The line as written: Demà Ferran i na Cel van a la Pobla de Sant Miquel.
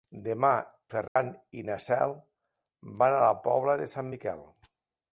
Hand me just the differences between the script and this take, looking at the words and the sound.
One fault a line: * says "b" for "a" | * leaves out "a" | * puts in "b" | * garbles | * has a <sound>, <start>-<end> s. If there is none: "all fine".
* has a dropout, 1.1-1.2 s